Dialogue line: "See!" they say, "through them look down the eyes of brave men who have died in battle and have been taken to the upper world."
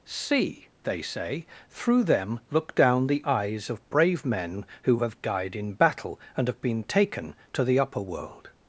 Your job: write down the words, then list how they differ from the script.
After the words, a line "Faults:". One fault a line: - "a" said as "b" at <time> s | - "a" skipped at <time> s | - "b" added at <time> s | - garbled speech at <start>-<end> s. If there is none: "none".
"See!" they say, "through them look down the eyes of brave men who have died in battle and have been taken to the upper world."
Faults:
none